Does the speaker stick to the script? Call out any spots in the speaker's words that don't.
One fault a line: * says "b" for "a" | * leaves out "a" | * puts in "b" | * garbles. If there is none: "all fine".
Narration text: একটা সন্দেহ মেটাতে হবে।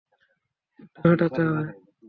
* leaves out "সন্দেহ"